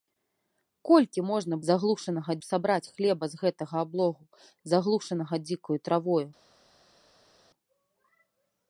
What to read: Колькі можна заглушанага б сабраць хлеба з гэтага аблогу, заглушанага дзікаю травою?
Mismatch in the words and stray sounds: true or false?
false